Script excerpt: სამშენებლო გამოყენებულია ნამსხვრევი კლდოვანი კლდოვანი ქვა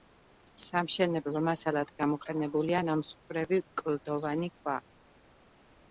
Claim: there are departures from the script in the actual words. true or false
true